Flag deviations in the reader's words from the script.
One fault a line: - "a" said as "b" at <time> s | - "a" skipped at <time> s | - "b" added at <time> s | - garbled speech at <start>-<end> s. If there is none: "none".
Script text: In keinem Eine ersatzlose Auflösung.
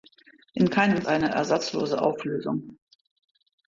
none